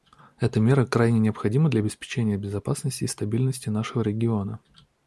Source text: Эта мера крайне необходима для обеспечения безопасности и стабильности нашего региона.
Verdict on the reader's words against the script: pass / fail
pass